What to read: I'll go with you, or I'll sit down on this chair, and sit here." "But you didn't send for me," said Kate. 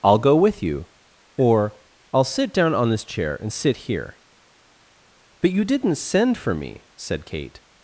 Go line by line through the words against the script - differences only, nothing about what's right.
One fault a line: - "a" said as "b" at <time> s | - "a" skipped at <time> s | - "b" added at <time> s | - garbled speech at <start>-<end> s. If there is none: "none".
none